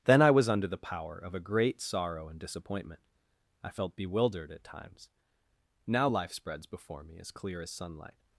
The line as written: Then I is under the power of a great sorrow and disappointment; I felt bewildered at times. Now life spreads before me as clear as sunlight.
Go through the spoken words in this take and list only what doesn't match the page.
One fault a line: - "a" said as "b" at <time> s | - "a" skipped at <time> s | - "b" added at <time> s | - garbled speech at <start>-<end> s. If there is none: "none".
- "is" said as "was" at 0.3 s